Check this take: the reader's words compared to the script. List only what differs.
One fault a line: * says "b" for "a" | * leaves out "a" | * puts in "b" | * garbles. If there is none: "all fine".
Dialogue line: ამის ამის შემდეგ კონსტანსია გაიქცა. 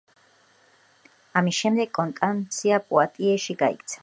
* leaves out "ამის"
* puts in "პუატიეში"